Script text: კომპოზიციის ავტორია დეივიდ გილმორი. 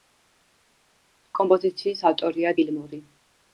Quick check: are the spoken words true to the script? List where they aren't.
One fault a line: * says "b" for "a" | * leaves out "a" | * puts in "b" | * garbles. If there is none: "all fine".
* leaves out "დეივიდ"